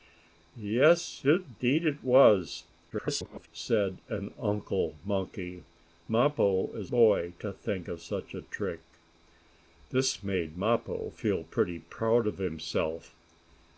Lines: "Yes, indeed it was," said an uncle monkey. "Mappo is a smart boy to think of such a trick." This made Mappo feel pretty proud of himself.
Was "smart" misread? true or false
true